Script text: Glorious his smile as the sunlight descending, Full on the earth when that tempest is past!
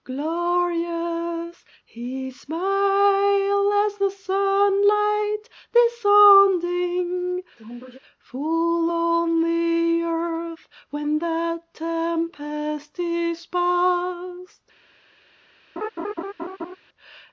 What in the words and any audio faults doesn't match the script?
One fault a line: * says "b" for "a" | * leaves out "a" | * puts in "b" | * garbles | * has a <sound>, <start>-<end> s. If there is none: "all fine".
* has a sneeze, 7.6-8.0 s
* has a laugh, 15.8-16.8 s